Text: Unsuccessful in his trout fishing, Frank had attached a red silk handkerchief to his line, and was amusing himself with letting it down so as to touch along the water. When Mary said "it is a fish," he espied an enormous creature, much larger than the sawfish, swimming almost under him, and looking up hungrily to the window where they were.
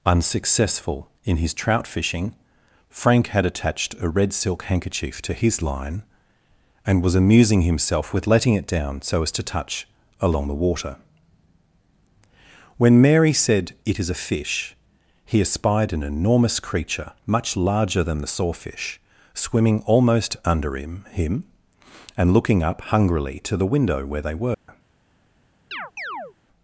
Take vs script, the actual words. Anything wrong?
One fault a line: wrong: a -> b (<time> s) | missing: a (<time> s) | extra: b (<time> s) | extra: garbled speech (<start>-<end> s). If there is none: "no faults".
extra: him (21.1 s)